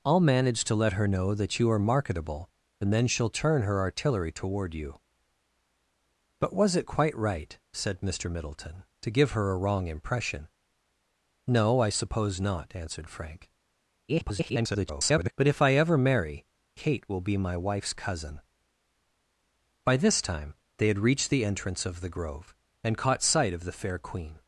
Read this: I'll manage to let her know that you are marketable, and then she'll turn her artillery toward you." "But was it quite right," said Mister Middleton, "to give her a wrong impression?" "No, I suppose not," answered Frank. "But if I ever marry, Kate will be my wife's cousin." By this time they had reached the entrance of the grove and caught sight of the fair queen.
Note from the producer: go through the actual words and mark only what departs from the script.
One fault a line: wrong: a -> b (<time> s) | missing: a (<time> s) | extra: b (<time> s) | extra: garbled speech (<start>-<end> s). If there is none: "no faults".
extra: garbled speech (14.1-15.3 s)